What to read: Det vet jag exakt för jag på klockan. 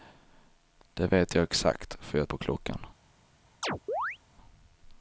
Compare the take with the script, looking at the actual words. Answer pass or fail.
pass